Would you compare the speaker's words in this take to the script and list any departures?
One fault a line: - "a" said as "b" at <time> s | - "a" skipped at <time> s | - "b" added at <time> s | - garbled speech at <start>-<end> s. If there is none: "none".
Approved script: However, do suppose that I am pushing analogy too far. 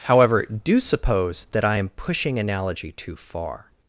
none